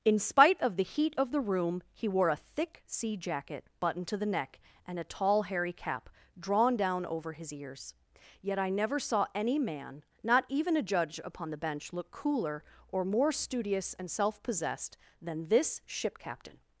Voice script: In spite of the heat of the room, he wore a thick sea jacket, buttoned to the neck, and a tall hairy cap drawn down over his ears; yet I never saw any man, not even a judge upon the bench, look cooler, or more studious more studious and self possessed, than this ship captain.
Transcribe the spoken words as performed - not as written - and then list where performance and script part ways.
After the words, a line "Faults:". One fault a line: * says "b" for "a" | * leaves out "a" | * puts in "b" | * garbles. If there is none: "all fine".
In spite of the heat of the room, he wore a thick sea jacket, buttoned to the neck, and a tall hairy cap drawn down over his ears; yet I never saw any man, not even a judge upon the bench, look cooler, or more studious and self possessed, than this ship captain.
Faults:
* leaves out "more studious"